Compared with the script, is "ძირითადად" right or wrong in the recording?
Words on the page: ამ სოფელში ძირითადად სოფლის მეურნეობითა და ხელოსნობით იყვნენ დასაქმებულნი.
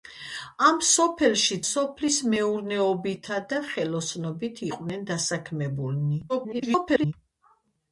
wrong